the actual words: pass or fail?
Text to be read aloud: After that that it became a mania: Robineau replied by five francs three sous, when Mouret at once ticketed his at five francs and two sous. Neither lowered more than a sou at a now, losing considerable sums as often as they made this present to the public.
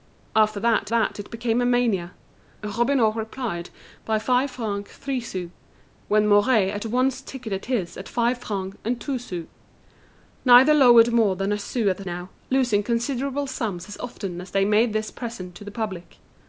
pass